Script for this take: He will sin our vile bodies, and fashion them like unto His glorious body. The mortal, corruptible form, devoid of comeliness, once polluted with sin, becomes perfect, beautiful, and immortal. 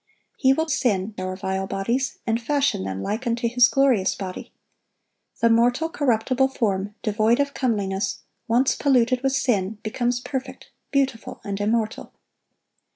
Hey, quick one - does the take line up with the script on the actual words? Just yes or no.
yes